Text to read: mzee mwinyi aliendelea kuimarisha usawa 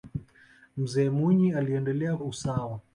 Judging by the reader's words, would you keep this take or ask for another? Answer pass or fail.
fail